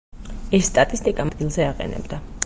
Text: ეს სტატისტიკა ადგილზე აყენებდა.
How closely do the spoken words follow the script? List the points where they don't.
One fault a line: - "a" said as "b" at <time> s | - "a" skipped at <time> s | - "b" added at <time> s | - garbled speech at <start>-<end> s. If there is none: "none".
none